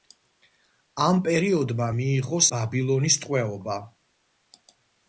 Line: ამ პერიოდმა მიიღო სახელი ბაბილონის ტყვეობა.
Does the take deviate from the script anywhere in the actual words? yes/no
yes